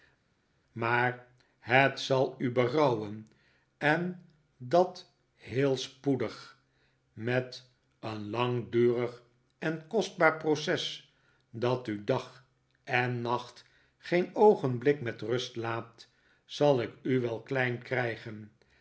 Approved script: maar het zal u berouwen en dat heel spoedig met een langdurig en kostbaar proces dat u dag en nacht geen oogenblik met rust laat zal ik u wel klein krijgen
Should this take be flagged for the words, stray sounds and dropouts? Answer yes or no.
no